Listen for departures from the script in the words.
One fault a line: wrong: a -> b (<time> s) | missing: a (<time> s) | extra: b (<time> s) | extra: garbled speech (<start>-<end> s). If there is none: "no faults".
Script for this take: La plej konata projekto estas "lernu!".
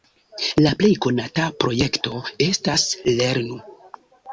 no faults